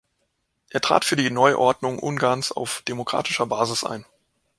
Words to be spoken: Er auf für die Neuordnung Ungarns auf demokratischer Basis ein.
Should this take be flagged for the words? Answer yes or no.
yes